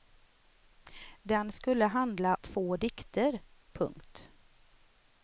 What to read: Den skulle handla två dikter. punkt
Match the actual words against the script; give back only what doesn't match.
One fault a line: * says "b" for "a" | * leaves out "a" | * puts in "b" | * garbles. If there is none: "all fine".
all fine